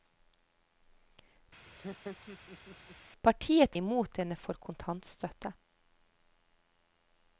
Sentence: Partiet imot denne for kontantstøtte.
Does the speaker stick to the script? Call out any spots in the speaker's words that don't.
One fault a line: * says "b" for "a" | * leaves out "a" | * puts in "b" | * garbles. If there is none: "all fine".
all fine